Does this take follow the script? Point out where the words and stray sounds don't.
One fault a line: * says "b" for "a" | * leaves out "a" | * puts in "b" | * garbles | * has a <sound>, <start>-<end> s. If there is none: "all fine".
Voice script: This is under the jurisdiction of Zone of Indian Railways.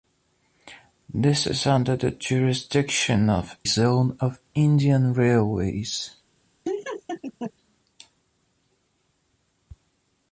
* has a laugh, 6.6-7.5 s